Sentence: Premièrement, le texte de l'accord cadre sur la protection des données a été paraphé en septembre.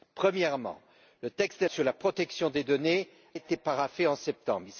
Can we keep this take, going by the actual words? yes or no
no